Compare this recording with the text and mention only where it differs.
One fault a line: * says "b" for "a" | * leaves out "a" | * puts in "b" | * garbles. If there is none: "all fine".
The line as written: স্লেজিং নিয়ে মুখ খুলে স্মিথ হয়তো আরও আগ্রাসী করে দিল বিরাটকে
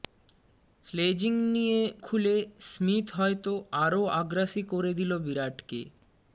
* leaves out "মুখ"